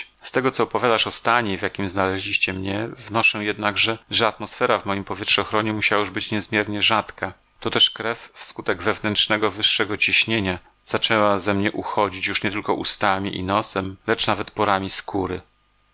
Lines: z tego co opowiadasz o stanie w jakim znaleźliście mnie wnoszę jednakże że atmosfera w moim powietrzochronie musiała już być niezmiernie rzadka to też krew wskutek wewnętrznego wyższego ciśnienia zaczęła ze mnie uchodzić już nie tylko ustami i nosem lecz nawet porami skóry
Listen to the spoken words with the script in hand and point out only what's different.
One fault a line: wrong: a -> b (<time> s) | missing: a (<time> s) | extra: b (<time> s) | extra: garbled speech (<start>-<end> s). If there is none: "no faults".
no faults